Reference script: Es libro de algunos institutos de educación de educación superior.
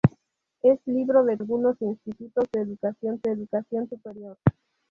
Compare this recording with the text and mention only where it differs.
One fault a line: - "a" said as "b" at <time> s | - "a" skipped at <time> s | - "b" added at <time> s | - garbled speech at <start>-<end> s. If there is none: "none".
none